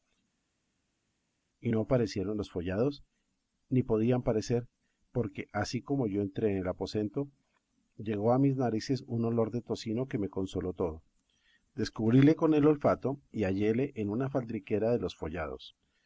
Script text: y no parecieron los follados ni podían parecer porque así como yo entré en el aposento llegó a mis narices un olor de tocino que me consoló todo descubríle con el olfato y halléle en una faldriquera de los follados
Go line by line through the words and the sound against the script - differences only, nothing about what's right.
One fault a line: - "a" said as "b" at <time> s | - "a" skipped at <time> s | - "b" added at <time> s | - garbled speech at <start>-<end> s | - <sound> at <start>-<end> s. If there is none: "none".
none